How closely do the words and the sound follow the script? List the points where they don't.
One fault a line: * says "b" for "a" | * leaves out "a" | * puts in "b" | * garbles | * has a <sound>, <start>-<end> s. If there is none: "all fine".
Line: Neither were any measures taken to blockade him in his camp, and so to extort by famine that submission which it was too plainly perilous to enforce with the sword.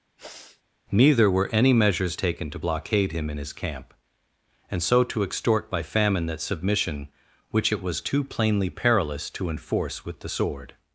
* has a sniff, 0.2-0.6 s